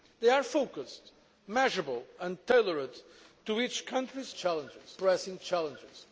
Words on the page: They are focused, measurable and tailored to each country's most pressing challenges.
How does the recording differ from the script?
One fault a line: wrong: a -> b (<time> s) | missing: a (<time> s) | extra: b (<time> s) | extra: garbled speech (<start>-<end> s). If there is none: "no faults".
wrong: most -> challenges (4.3 s)